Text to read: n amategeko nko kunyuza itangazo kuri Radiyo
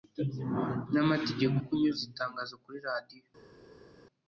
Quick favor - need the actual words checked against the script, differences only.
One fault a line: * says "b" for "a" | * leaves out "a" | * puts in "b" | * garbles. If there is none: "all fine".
* leaves out "nko"